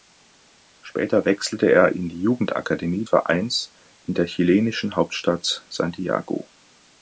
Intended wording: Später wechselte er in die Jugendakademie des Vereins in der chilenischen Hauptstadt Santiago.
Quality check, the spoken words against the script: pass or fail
fail